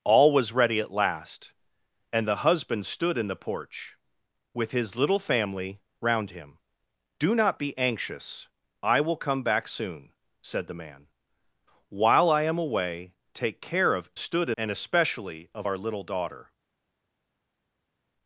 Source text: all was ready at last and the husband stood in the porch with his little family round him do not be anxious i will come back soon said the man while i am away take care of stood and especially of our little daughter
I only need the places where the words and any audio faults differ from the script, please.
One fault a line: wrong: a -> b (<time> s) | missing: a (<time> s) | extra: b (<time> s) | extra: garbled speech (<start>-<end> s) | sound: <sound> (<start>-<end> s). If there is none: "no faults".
no faults